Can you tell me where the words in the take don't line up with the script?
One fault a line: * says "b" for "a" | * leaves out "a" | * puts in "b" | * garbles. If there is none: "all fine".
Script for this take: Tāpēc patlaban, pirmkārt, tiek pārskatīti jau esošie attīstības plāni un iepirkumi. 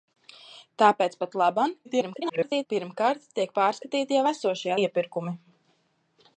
* garbles
* leaves out "attīstības plāni un"